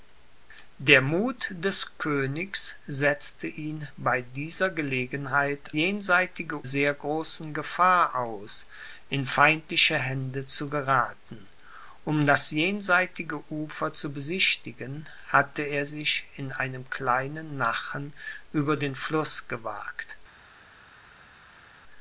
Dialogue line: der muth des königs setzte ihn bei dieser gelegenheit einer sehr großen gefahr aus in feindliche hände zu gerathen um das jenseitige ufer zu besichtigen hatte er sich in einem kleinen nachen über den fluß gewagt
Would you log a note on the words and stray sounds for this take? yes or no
yes